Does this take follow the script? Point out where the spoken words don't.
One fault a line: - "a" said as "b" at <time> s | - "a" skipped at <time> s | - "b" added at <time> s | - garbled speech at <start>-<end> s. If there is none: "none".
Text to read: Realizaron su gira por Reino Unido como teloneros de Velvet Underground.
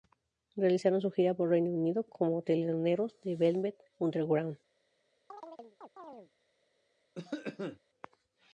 none